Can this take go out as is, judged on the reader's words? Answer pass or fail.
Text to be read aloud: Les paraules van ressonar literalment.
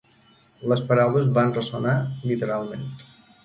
pass